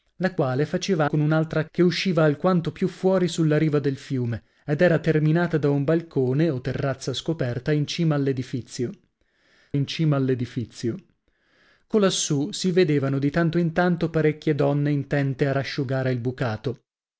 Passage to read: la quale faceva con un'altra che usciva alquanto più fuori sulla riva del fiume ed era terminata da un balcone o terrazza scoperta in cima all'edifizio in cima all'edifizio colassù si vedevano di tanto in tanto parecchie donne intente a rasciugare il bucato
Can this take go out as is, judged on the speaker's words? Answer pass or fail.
pass